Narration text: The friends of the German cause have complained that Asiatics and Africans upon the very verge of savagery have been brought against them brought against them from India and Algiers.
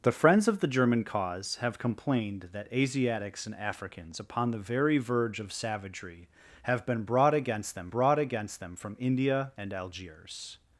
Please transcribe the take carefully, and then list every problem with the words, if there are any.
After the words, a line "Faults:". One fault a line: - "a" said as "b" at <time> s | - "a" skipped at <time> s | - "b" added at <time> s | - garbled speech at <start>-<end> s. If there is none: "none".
The friends of the German cause have complained that Asiatics and Africans upon the very verge of savagery have been brought against them brought against them from India and Algiers.
Faults:
none